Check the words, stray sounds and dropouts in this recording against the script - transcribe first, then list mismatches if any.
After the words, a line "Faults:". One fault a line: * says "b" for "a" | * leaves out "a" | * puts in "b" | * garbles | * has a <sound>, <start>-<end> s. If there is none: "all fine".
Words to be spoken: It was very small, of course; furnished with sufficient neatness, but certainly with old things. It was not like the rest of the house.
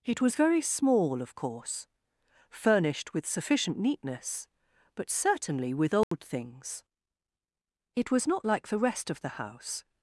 It was very small, of course; furnished with sufficient neatness, but certainly with old things. It was not like the rest of the house.
Faults:
* has a dropout, 6.0-6.1 s